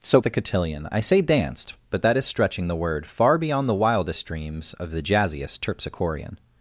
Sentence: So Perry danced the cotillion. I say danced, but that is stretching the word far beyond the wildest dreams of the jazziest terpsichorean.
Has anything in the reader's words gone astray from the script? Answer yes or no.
yes